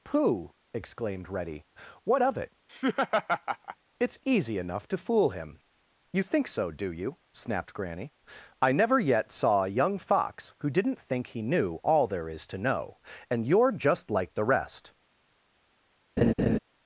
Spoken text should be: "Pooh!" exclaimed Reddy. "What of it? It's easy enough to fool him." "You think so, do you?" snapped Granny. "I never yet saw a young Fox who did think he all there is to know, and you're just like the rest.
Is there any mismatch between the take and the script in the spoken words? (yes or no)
yes